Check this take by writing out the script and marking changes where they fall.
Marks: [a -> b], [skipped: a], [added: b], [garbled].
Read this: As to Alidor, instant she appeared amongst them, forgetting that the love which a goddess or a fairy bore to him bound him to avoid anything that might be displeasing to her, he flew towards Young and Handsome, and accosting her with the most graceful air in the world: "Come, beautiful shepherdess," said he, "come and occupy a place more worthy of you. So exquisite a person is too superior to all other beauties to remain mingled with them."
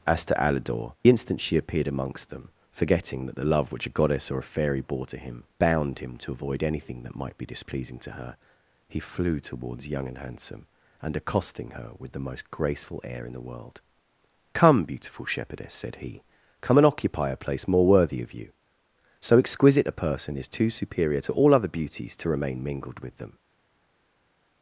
As to Alidor, instant she appeared amongst them, forgetting that the love which a goddess or a fairy bore to him bound him to avoid anything that might be displeasing to her, he flew towards Young and Handsome, and accosting her with the most graceful air in the world: "Come, beautiful shepherdess," said he, "come and occupy a place more worthy of you. So exquisite a person is too superior to all other beauties to remain mingled with them."